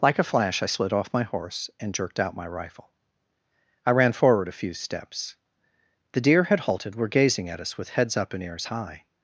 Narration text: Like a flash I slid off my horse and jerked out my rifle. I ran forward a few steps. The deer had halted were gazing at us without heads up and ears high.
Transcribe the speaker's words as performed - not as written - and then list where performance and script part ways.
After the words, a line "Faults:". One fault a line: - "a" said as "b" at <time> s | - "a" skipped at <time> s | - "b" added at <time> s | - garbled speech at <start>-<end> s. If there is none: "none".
Like a flash I slid off my horse and jerked out my rifle. I ran forward a few steps. The deer had halted were gazing at us with heads up and ears high.
Faults:
- "without" said as "with" at 7.8 s